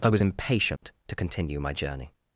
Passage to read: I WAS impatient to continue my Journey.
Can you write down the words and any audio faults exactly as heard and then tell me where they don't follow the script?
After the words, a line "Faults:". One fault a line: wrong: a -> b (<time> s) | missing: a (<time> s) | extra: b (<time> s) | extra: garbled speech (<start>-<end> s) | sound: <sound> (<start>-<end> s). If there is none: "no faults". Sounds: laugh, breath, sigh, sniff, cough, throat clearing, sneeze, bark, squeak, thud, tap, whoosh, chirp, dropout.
I WAS impatient to continue my Journey.
Faults:
sound: dropout (0.8-0.8 s)